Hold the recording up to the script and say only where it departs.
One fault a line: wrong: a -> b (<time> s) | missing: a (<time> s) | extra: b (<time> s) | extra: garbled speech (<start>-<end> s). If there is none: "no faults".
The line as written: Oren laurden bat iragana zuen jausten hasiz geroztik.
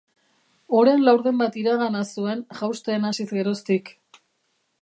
no faults